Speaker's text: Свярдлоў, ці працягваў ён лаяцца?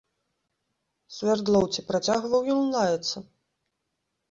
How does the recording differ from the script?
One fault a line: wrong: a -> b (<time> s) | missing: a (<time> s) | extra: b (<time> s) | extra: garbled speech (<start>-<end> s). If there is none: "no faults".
no faults